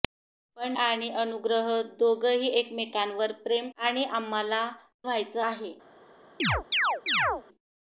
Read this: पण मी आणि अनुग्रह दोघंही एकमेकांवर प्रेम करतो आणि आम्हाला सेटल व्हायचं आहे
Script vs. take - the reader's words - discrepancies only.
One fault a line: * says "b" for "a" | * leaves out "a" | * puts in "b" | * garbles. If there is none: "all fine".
* leaves out "मी"
* leaves out "करतो"
* leaves out "सेटल"